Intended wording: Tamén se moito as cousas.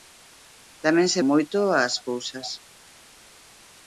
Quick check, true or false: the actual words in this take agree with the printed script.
true